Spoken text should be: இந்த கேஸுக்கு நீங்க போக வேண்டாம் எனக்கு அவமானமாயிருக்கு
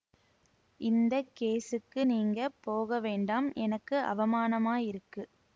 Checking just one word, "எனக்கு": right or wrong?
right